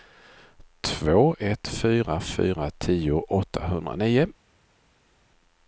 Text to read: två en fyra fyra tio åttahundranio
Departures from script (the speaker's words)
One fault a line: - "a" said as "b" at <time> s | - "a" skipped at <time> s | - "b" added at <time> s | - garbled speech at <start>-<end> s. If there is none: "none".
- "en" said as "ett" at 1.4 s